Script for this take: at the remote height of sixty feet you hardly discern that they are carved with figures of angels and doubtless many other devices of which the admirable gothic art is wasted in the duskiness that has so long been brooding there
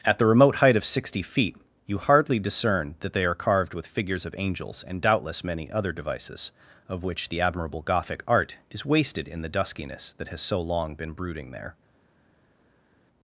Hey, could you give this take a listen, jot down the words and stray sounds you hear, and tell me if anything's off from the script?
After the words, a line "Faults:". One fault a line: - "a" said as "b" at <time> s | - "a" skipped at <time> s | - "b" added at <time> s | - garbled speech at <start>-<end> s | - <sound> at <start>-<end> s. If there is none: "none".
at the remote height of sixty feet you hardly discern that they are carved with figures of angels and doubtless many other devices of which the admirable gothic art is wasted in the duskiness that has so long been brooding there
Faults:
none